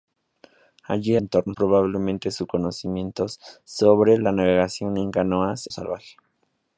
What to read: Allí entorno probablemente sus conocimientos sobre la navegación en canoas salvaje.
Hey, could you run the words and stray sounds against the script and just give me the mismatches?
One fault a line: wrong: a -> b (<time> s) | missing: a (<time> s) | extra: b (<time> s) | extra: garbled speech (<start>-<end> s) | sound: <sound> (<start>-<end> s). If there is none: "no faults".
no faults